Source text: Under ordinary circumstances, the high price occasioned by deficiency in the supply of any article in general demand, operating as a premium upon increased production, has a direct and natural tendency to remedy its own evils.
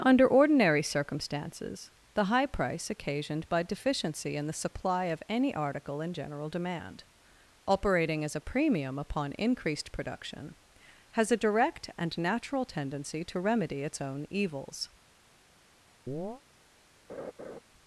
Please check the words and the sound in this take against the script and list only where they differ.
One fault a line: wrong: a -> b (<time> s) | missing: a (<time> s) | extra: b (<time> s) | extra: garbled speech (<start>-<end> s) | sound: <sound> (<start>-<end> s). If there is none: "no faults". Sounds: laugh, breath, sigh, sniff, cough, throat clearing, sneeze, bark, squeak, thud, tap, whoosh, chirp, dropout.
sound: chirp (16.1-16.4 s)
sound: laugh (17.1-17.6 s)